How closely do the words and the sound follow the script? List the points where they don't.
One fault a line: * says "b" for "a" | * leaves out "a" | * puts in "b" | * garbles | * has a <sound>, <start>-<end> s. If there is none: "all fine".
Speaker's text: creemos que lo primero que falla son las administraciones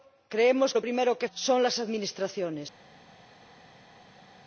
* leaves out "que"
* leaves out "falla"